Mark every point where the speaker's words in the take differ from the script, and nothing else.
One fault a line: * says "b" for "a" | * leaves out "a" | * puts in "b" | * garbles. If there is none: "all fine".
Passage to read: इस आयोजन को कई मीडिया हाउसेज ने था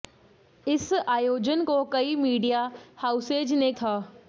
all fine